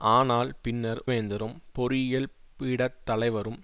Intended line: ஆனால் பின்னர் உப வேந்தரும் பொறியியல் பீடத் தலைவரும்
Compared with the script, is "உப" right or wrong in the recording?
wrong